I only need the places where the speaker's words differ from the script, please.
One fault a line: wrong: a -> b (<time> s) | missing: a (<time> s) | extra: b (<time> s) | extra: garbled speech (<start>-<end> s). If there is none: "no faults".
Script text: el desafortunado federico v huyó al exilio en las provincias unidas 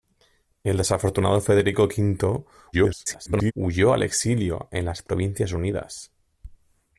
extra: garbled speech (2.7-3.5 s)